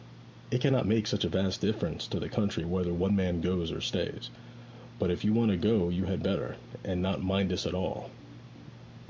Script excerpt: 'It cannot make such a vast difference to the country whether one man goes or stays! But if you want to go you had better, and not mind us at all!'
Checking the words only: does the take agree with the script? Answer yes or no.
yes